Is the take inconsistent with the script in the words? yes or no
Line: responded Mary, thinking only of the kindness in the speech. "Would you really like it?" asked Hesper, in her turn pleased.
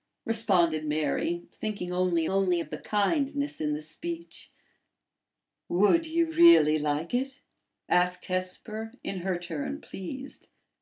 yes